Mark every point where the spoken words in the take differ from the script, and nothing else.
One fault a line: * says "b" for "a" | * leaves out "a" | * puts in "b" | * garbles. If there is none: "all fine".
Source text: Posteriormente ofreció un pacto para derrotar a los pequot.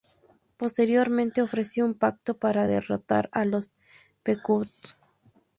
all fine